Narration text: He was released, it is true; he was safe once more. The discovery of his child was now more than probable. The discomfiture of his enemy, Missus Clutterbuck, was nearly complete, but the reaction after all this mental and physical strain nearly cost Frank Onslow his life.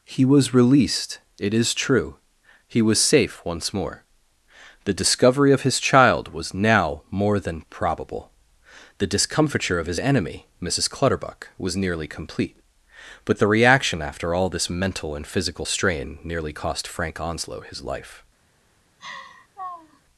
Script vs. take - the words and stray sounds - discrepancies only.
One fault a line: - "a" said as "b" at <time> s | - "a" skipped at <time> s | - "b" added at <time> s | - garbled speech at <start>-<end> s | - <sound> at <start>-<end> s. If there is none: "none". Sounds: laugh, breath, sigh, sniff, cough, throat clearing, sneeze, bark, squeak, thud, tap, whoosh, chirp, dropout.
- laugh at 19.0-20.0 s